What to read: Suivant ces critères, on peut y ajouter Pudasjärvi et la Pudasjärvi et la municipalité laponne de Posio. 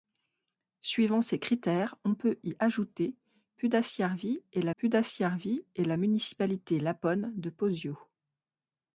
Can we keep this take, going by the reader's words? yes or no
yes